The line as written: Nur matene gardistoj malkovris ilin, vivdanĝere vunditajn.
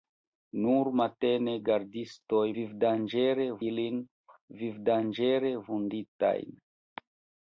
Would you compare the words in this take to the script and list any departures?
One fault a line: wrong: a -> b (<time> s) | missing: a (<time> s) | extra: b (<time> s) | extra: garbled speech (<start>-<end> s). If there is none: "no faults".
wrong: malkovris -> vivdanĝere (2.6 s)